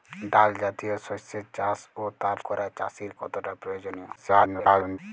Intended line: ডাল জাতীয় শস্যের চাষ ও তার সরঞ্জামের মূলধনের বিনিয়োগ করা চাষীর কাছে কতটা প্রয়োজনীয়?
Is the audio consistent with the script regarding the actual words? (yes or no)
no